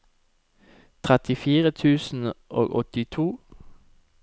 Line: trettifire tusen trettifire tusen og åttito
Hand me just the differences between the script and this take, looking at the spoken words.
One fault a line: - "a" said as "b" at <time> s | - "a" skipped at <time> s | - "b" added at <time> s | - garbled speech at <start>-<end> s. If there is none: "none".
- "trettifire tusen" skipped at 2.3 s